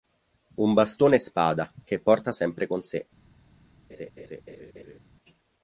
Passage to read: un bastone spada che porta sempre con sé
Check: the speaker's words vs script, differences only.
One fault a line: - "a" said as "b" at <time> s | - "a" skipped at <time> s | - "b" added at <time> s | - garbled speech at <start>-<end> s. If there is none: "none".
none